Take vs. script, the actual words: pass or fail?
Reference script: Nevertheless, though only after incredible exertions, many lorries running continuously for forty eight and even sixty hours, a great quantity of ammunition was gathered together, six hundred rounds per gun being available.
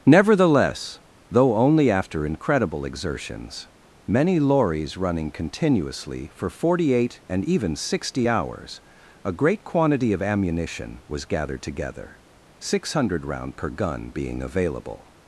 fail